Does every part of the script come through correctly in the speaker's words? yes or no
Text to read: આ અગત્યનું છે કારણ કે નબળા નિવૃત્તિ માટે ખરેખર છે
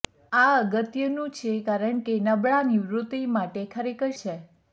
yes